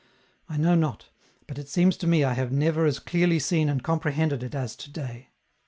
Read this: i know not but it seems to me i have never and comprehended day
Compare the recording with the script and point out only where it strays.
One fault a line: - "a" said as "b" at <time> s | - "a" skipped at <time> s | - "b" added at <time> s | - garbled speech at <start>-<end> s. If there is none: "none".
- "as clearly seen" added at 2.9 s
- "it as to" added at 4.4 s